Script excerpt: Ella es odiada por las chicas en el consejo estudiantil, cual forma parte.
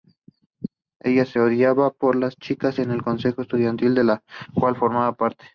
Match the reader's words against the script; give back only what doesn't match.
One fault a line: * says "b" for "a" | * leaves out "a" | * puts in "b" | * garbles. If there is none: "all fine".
* puts in "del"